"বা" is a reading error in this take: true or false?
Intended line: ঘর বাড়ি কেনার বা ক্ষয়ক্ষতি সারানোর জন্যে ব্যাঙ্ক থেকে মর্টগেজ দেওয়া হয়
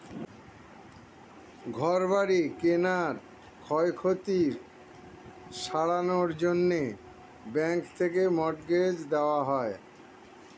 true